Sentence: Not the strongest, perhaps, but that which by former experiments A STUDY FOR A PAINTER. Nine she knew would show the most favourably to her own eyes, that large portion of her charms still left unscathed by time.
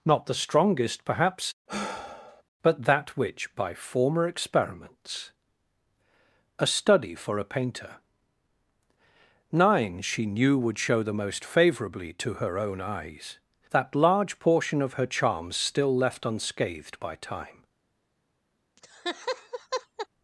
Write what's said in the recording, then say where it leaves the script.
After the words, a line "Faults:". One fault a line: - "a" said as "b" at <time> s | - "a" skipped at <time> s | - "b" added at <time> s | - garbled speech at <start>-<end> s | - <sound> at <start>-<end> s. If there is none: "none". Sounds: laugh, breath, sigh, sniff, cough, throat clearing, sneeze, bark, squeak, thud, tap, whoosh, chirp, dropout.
Not the strongest, perhaps, but that which by former experiments A STUDY FOR A PAINTER. Nine she knew would show the most favourably to her own eyes, that large portion of her charms still left unscathed by time.
Faults:
- sigh at 1.7-2.4 s
- laugh at 18.8-20.1 s